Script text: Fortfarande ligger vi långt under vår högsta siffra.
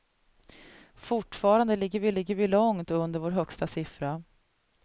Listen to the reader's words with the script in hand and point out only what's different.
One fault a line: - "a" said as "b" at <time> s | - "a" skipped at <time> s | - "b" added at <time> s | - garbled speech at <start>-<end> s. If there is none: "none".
- "ligger vi" added at 2.1 s